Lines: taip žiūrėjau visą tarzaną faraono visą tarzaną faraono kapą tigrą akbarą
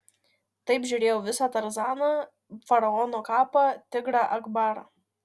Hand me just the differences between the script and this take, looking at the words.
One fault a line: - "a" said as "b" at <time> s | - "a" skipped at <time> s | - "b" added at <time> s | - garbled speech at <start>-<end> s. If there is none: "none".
- "visą tarzaną faraono" skipped at 3.2 s